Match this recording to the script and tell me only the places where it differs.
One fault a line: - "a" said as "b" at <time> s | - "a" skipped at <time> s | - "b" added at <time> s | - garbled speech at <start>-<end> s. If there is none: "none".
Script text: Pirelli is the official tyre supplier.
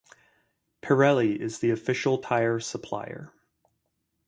none